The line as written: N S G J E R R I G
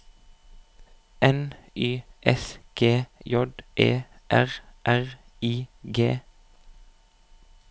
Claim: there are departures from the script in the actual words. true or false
true